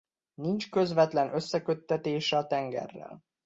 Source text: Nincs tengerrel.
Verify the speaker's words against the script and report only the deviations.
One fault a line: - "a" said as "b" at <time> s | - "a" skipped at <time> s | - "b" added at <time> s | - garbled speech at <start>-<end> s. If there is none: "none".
- "közvetlen összeköttetése a" added at 0.7 s